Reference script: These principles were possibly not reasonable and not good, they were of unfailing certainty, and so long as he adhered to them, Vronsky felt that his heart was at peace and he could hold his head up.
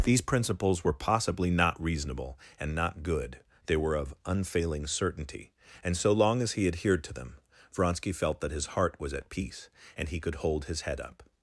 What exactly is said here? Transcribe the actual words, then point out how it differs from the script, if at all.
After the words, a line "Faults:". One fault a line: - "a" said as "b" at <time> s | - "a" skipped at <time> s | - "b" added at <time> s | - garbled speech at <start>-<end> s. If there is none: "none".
These principles were possibly not reasonable and not good, they were of unfailing certainty, and so long as he adhered to them, Vronsky felt that his heart was at peace and he could hold his head up.
Faults:
none